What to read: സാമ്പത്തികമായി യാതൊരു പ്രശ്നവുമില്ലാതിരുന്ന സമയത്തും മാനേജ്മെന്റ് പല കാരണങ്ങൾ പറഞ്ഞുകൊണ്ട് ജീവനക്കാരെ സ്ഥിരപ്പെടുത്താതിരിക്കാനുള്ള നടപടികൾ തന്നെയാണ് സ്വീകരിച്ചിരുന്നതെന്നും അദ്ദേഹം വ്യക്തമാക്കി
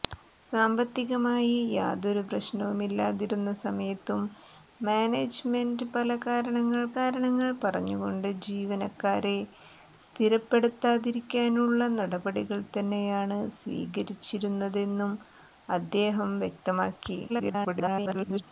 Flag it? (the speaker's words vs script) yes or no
yes